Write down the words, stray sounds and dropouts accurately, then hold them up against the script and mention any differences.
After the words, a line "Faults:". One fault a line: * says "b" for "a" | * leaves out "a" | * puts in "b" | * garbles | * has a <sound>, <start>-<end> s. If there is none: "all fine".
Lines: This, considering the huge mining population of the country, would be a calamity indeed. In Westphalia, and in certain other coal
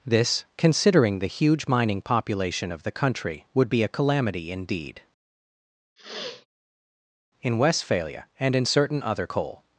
This, considering the huge mining population of the country, would be a calamity indeed. In Westphalia, and in certain other coal
Faults:
* has a sniff, 6.0-6.5 s